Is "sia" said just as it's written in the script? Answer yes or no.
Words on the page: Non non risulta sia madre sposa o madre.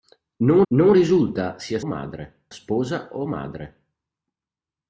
yes